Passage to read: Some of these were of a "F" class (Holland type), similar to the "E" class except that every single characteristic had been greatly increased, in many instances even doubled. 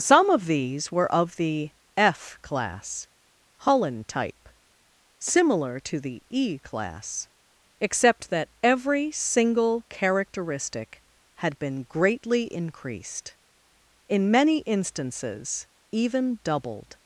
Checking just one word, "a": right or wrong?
wrong